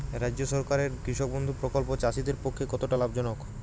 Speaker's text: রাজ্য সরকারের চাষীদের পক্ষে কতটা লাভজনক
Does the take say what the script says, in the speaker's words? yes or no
no